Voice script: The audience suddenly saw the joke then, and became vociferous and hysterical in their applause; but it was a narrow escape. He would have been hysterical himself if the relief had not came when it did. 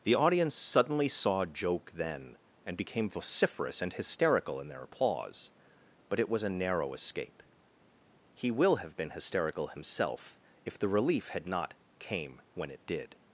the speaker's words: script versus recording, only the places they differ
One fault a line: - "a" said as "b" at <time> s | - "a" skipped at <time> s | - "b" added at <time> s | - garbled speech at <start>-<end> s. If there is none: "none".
- "the" skipped at 1.4 s
- "would" said as "will" at 8.5 s